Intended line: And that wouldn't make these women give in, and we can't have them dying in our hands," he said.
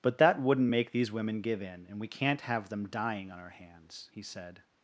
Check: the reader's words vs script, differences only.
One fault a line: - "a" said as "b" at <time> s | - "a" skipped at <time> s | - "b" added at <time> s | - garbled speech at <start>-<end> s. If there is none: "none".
- "And" said as "But" at 0.0 s
- "in" said as "on" at 3.3 s